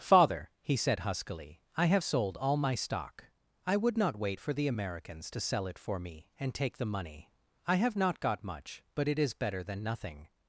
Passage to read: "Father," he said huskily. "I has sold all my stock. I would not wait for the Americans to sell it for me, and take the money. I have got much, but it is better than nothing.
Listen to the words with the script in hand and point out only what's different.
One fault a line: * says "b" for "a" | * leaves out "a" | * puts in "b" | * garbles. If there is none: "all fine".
* says "have" for "has"
* puts in "not"